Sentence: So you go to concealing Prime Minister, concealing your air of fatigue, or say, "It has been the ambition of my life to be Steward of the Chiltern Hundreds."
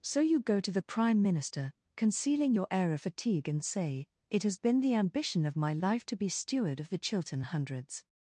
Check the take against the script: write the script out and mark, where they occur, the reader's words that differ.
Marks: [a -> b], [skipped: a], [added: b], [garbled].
So you go to [concealing -> the] Prime Minister, concealing your air of fatigue, [or -> and] say, "It has been the ambition of my life to be Steward of the Chiltern Hundreds."